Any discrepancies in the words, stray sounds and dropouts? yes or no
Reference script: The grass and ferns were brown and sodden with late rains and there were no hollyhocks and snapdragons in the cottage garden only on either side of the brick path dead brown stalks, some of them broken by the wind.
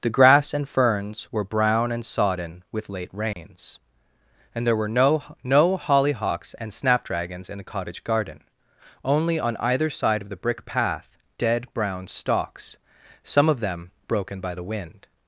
yes